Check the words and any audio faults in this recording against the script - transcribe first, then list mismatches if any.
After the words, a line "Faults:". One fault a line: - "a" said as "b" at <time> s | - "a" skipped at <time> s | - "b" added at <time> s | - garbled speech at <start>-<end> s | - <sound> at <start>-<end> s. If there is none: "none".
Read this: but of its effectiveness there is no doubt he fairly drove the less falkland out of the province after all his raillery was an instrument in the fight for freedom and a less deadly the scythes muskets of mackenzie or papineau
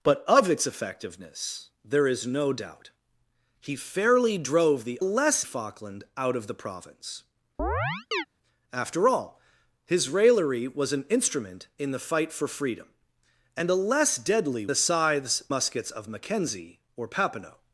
but of its effectiveness there is no doubt he fairly drove the less falkland out of the province after all his raillery was an instrument in the fight for freedom and a less deadly the scythes muskets of mackenzie or papineau
Faults:
- chirp at 7.6-8.3 s